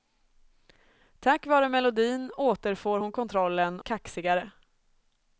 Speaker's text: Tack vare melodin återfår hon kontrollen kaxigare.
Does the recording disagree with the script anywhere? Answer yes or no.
no